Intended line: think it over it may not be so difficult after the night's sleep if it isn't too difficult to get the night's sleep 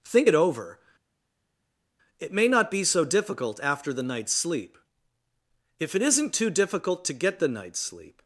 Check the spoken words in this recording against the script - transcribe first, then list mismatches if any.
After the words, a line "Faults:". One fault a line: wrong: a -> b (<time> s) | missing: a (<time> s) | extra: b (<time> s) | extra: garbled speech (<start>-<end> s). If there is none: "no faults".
think it over it may not be so difficult after the night's sleep if it isn't too difficult to get the night's sleep
Faults:
no faults